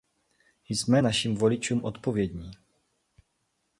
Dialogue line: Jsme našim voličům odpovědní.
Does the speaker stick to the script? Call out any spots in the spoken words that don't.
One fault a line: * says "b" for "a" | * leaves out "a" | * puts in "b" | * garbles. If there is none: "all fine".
all fine